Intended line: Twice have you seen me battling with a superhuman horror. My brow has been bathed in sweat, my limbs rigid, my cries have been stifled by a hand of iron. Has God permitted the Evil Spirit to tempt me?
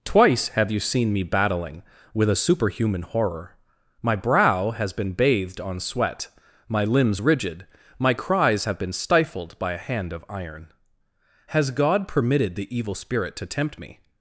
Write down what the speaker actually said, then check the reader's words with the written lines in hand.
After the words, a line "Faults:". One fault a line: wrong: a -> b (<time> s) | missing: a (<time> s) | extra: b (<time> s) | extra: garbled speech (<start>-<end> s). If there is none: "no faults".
Twice have you seen me battling with a superhuman horror. My brow has been bathed on sweat, my limbs rigid, my cries have been stifled by a hand of iron. Has God permitted the Evil Spirit to tempt me?
Faults:
wrong: in -> on (5.6 s)